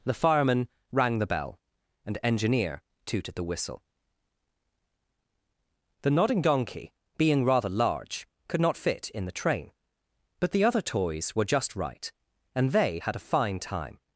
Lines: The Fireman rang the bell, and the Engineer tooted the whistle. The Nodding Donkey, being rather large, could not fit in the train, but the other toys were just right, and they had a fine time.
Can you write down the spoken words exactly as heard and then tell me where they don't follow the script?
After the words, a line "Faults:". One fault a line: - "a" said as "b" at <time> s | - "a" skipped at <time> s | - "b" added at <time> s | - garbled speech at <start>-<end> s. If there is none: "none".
The Fireman rang the bell, and Engineer tooted the whistle. The Nodding Donkey, being rather large, could not fit in the train, but the other toys were just right, and they had a fine time.
Faults:
- "the" skipped at 2.2 s